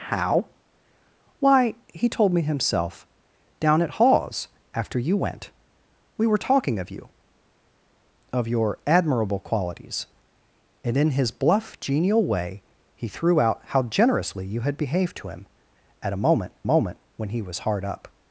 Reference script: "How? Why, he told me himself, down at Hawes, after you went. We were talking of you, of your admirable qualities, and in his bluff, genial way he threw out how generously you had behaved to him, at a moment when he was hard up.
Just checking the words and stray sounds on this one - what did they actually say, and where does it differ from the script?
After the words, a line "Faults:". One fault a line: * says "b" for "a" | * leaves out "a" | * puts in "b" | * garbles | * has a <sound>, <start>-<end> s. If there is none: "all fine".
"How? Why, he told me himself, down at Hawes, after you went. We were talking of you, of your admirable qualities, and in his bluff, genial way he threw out how generously you had behaved to him, at a moment moment when he was hard up.
Faults:
* puts in "moment"